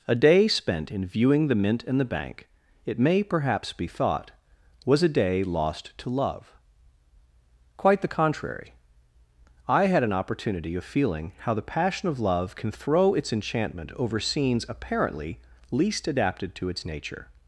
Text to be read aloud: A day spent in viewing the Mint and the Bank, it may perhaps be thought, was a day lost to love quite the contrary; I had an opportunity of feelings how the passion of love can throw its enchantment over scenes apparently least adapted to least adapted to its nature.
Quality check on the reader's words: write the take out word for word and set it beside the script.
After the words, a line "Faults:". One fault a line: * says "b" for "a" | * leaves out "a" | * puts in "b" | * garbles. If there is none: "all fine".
A day spent in viewing the Mint and the Bank, it may perhaps be thought, was a day lost to love quite the contrary; I had an opportunity of feeling how the passion of love can throw its enchantment over scenes apparently least adapted to its nature.
Faults:
* says "feeling" for "feelings"
* leaves out "least adapted to"